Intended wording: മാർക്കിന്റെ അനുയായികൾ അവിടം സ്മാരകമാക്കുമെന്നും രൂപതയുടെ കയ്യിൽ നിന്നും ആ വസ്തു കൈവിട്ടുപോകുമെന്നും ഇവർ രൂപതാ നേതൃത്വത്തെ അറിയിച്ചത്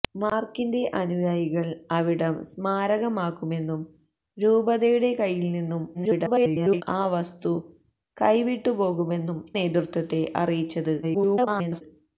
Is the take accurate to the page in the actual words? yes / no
no